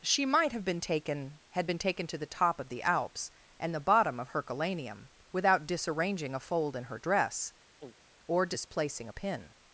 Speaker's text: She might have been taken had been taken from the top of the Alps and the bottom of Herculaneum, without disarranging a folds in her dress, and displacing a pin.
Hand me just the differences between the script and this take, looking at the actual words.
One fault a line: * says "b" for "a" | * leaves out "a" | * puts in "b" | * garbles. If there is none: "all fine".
* says "to" for "from"
* says "fold" for "folds"
* says "or" for "and"